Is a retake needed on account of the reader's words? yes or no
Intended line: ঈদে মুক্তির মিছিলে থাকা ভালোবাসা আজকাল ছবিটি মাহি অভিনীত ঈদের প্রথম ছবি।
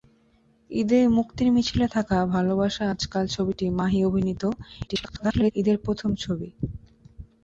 yes